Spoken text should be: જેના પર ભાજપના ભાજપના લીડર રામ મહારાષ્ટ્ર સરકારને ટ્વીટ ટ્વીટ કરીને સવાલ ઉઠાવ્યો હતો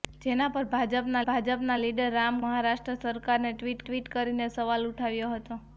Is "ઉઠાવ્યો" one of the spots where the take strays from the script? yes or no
no